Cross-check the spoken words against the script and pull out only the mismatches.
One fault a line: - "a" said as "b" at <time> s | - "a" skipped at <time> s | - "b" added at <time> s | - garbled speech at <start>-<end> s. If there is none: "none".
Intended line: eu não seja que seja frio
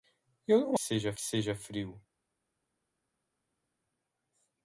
none